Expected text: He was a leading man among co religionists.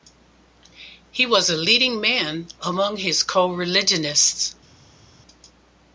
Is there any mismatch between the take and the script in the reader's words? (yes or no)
yes